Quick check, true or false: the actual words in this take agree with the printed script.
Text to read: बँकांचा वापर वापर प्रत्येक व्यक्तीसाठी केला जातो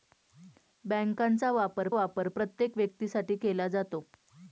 true